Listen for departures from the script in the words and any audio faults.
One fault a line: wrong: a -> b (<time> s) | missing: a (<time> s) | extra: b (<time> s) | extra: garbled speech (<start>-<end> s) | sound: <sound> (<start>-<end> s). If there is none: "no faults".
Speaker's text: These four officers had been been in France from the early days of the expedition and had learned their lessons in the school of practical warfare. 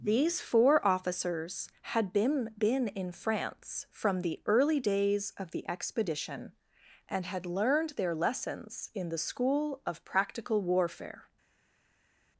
no faults